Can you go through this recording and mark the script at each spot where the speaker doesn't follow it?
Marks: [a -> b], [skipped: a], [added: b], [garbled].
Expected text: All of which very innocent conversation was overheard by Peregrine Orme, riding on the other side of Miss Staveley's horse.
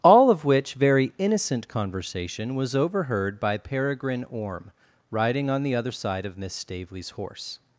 All of which very innocent conversation was overheard by Peregrine Orme, riding on the other side of Miss Staveley's horse.